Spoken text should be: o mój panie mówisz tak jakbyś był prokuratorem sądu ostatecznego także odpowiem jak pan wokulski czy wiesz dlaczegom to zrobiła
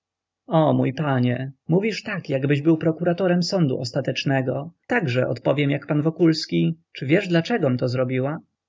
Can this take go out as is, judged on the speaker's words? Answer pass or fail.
pass